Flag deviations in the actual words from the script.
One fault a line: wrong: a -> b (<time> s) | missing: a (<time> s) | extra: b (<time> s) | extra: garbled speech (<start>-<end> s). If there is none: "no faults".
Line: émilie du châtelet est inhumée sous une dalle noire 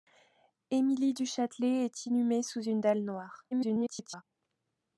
extra: garbled speech (3.5-4.2 s)